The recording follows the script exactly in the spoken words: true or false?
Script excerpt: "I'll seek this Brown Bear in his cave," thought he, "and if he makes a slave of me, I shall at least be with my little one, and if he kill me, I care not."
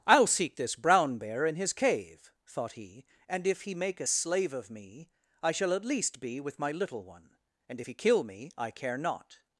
false